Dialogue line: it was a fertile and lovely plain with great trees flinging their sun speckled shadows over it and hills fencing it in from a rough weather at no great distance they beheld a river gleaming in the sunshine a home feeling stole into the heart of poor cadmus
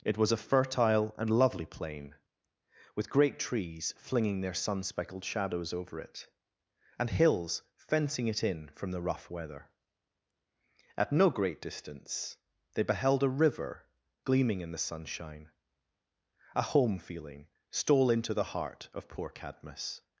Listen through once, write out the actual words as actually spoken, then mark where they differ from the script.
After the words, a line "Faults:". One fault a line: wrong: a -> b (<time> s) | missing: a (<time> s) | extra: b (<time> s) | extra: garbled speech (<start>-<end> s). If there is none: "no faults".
it was a fertile and lovely plain with great trees flinging their sun speckled shadows over it and hills fencing it in from the rough weather at no great distance they beheld a river gleaming in the sunshine a home feeling stole into the heart of poor cadmus
Faults:
wrong: a -> the (8.9 s)